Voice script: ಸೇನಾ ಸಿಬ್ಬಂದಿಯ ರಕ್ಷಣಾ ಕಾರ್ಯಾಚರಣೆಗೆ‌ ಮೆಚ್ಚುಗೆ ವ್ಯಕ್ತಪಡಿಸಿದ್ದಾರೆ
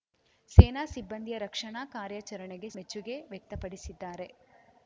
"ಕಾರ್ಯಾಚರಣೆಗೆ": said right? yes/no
yes